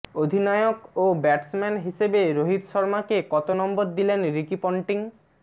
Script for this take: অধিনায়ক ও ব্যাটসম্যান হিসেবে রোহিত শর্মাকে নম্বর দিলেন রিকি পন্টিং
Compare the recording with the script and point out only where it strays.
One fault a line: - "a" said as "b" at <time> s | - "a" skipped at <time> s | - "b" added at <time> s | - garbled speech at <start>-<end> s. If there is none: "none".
- "কত" added at 3.3 s